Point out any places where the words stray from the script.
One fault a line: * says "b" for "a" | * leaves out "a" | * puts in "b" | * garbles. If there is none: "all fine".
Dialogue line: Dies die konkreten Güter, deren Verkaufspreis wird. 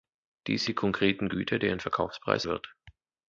all fine